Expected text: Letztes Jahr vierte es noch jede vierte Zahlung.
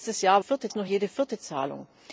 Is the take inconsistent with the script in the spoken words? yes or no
no